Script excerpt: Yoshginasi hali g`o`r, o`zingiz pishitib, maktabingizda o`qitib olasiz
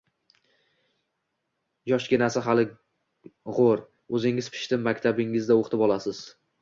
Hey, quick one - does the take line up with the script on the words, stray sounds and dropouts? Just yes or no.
yes